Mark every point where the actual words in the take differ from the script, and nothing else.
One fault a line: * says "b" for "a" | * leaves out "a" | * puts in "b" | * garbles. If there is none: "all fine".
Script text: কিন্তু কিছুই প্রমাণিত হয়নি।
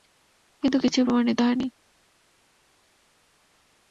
all fine